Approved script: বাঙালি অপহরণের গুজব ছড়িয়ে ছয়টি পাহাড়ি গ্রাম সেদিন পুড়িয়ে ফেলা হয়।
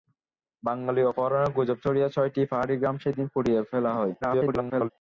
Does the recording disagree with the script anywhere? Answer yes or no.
yes